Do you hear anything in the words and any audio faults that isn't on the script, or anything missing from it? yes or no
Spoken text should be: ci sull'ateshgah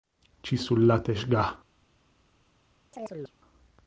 yes